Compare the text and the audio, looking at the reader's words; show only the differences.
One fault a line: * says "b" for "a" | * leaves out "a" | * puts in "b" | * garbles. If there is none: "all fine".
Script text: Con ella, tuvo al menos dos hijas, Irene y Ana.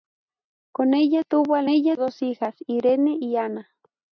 * says "ella" for "menos"